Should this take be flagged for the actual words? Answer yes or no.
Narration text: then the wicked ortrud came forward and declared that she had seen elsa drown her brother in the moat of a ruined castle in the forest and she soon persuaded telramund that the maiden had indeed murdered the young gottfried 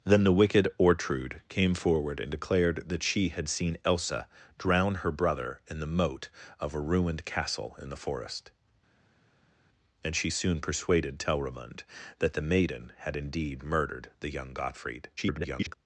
yes